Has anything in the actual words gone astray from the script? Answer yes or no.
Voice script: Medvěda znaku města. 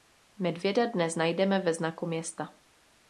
yes